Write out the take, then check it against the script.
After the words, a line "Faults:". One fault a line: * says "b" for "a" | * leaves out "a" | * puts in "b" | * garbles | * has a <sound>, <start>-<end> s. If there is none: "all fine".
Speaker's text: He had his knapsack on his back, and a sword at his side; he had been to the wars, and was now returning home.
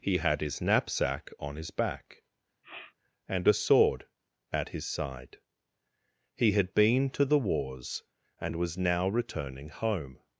He had his knapsack on his back, and a sword at his side; he had been to the wars, and was now returning home.
Faults:
* has a sniff, 2.6-3.0 s